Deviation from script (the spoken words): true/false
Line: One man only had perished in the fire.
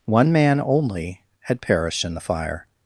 false